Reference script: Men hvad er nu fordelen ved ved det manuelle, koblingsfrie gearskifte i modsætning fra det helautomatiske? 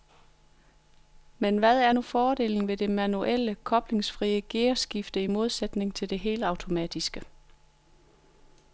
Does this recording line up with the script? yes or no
no